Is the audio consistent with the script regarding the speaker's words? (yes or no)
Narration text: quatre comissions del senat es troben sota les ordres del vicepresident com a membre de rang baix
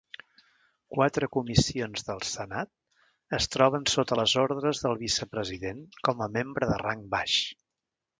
yes